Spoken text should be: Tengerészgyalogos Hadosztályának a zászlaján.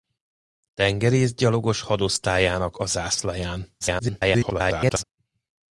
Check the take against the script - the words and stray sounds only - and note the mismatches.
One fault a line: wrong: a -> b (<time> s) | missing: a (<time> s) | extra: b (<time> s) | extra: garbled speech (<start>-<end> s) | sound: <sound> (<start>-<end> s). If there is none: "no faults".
extra: garbled speech (3.8-5.0 s)